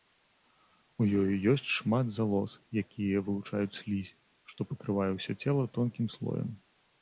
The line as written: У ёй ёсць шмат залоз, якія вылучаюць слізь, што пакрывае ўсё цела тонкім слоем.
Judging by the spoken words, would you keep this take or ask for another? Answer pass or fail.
pass